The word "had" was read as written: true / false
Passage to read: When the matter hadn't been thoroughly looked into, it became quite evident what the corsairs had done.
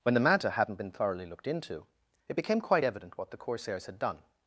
true